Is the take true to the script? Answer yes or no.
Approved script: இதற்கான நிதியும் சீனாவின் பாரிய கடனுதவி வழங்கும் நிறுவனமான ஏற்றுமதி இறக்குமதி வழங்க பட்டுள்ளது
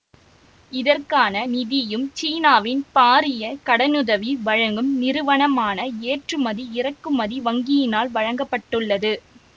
no